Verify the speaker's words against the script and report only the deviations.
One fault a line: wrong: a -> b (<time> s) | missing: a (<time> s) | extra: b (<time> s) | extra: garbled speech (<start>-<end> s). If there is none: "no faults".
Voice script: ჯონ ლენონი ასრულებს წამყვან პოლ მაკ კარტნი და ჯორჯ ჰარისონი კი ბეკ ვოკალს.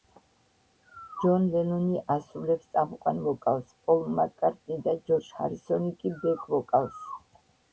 extra: ვოკალს (3.3 s)